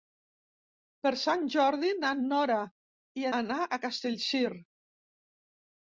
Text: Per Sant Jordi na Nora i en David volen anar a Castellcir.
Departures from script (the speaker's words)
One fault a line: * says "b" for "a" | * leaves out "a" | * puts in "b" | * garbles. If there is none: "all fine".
* leaves out "en David volen"